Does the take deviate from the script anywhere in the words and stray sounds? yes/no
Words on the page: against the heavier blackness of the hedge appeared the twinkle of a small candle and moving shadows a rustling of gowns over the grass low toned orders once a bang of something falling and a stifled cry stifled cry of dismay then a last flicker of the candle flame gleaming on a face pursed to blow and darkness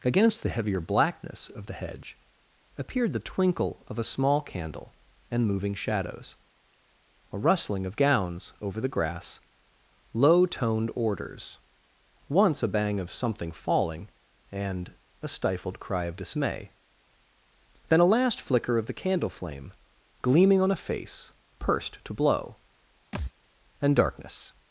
yes